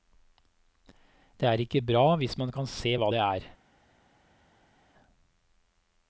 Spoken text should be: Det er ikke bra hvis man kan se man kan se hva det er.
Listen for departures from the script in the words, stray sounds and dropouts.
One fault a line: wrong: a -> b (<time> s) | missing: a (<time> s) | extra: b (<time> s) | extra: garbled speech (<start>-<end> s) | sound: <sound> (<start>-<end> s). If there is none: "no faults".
missing: man kan se (3.0 s)